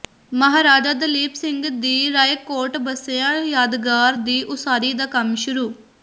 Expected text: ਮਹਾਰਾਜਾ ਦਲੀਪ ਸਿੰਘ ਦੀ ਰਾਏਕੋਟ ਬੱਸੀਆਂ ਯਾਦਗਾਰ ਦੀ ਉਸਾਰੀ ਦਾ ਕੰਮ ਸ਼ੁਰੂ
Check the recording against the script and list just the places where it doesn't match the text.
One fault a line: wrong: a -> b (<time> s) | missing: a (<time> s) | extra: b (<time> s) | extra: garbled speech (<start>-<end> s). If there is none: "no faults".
no faults